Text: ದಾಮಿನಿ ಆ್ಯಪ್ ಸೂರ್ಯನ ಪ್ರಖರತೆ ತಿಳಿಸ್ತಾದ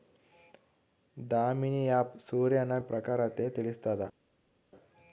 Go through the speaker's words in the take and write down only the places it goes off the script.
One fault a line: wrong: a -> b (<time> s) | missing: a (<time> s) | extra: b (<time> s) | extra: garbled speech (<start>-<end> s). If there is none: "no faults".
no faults